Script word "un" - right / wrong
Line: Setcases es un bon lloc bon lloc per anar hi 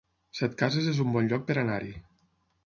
right